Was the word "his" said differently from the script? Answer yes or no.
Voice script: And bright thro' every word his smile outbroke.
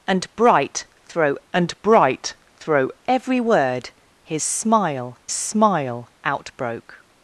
no